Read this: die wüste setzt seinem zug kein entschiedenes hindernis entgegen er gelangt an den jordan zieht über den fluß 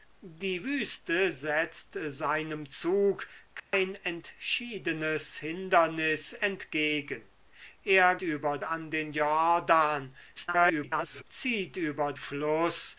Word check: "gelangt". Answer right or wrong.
wrong